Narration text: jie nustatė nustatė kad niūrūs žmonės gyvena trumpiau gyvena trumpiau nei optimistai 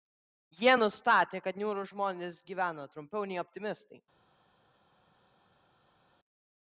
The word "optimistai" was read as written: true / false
true